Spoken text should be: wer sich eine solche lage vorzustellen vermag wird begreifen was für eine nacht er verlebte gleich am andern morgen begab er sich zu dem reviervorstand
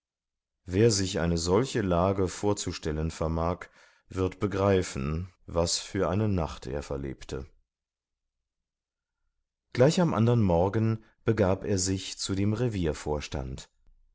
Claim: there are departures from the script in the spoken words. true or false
false